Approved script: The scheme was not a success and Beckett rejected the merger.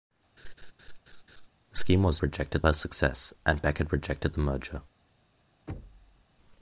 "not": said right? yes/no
no